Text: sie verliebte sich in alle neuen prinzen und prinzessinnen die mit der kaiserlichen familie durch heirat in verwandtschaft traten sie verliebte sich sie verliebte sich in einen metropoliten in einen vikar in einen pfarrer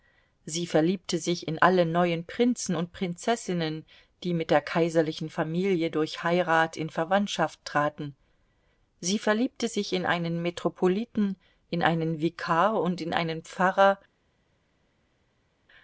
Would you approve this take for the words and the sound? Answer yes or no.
no